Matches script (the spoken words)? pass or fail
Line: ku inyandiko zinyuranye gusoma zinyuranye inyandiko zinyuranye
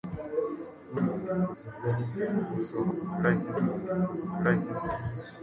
pass